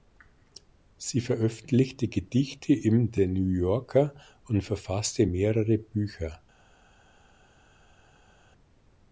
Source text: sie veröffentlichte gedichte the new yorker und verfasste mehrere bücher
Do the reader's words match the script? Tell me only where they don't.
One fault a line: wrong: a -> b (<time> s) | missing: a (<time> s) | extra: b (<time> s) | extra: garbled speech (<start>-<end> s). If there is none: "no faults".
extra: im (2.7 s)